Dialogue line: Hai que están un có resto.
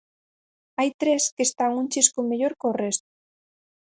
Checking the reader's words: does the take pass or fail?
fail